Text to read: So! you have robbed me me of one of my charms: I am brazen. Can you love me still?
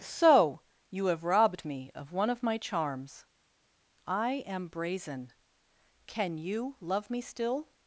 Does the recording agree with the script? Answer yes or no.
no